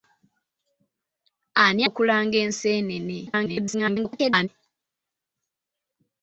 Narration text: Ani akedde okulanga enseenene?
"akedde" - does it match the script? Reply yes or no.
no